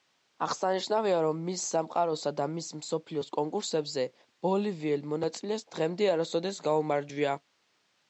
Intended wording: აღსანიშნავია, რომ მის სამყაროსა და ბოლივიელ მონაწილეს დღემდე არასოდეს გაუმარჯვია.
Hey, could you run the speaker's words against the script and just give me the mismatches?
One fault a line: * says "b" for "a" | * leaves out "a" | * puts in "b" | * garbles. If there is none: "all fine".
* puts in "მის მსოფლიოს კონკურსებზე"